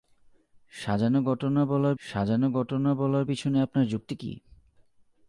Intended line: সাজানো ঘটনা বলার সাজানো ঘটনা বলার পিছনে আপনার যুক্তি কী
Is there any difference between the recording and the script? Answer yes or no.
no